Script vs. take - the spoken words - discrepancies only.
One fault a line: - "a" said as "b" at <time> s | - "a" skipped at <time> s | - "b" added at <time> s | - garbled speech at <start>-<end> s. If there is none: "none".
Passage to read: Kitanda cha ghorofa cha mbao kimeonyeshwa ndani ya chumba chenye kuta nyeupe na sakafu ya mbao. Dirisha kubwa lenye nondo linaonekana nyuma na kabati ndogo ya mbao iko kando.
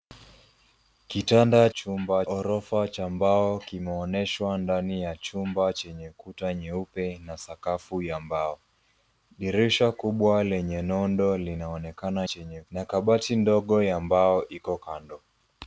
- "cha" said as "chumba" at 1.7 s
- "nyuma" said as "chenye" at 12.2 s